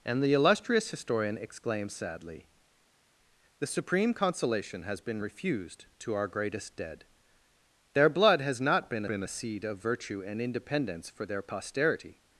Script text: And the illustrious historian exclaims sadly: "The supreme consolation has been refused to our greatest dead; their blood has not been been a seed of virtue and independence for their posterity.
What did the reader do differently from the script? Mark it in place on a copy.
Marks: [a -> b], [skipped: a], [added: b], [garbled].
And the illustrious historian exclaims sadly: "The supreme consolation has been refused to our greatest dead; their blood has not been been a seed of virtue and independence for their posterity.